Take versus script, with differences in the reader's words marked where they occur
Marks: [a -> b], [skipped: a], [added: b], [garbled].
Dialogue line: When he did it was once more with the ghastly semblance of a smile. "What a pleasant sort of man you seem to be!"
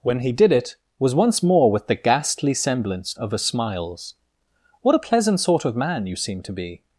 When he did it was once more with the ghastly semblance of a [smile. -> smiles] "What a pleasant sort of man you seem to be!"